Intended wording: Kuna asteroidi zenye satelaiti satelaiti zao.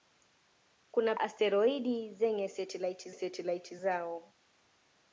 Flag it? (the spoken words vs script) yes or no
no